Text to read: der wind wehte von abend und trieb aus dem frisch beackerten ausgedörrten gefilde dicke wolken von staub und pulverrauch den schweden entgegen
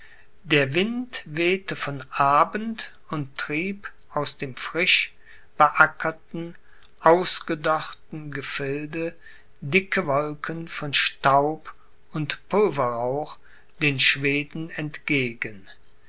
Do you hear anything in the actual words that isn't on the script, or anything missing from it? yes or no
no